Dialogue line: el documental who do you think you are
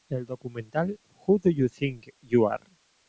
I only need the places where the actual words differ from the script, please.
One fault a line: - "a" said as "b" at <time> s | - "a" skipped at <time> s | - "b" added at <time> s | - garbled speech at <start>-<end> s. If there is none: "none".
none